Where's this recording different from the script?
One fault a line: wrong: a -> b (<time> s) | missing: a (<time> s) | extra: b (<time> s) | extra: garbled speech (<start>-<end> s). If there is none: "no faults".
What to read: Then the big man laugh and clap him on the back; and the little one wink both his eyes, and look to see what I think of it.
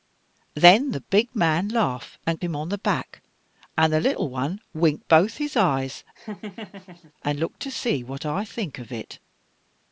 missing: clap (2.4 s)